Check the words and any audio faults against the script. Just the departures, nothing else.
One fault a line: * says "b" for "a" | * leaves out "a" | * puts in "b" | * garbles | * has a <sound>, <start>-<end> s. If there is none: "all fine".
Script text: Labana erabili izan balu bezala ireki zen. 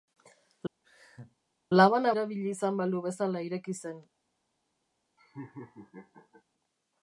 * has a laugh, 0.8-1.4 s
* has a laugh, 5.2-6.4 s